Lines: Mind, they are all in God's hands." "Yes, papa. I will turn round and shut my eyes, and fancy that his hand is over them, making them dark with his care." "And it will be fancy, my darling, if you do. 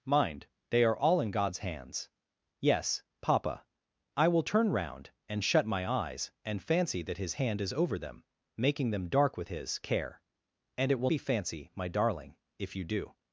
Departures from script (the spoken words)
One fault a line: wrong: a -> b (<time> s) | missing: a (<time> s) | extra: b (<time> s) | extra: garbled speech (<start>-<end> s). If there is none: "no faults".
no faults